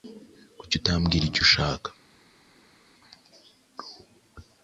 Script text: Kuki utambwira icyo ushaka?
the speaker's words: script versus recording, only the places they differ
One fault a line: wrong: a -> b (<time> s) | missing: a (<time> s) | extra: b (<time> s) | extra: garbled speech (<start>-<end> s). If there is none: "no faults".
no faults